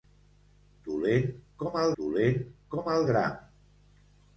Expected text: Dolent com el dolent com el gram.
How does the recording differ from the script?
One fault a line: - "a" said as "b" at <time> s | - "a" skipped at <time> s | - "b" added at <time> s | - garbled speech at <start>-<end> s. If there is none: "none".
none